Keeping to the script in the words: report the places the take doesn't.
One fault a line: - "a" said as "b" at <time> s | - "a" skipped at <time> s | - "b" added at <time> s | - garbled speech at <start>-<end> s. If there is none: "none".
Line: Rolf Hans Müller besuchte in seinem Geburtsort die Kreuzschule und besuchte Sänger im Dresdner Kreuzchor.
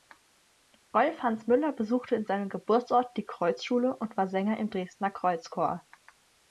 - "besuchte" said as "war" at 4.2 s